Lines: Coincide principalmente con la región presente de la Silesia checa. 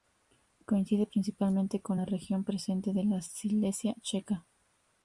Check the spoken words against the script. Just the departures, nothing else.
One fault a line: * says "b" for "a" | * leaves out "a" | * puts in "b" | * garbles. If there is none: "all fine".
all fine